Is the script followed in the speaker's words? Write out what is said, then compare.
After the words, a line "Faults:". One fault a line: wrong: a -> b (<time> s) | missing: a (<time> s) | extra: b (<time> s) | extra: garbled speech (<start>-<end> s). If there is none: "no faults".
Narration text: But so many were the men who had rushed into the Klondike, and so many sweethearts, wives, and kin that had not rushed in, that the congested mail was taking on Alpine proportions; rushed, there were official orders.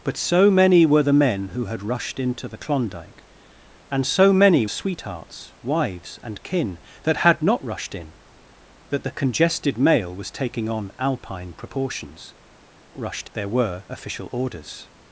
But so many were the men who had rushed into the Klondike, and so many sweethearts, wives, and kin that had not rushed in, that the congested mail was taking on Alpine proportions; rushed, there were official orders.
Faults:
no faults